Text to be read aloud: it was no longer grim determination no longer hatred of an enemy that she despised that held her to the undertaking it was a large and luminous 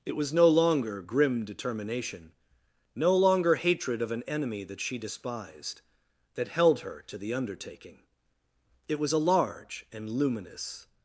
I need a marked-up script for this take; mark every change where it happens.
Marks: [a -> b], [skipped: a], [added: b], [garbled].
it was no longer grim determination no longer hatred of an enemy that she despised that held her to the undertaking it was a large and luminous